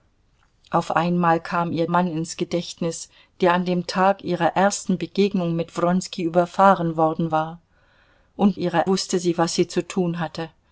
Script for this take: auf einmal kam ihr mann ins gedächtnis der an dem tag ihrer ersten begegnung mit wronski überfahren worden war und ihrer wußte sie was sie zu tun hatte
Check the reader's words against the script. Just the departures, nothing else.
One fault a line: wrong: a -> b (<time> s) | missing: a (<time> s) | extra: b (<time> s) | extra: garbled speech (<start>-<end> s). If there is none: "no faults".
no faults